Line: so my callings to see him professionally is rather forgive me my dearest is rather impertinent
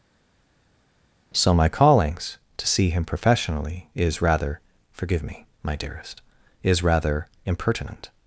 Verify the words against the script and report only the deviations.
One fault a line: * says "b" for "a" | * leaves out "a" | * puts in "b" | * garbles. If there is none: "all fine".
all fine